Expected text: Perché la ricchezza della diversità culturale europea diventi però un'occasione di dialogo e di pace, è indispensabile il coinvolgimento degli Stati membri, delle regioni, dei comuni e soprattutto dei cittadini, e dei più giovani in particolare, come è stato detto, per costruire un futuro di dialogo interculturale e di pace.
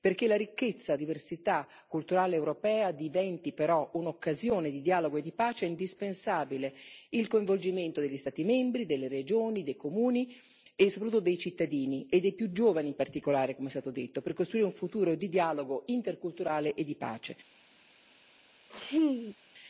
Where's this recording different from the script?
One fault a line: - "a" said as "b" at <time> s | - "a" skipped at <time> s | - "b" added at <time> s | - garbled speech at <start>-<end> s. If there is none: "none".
- "della" skipped at 0.9 s